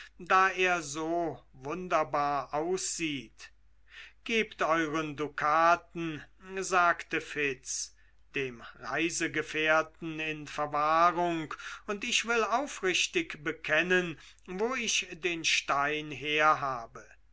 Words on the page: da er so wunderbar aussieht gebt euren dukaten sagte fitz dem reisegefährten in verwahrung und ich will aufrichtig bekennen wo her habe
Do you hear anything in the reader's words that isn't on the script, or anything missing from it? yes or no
yes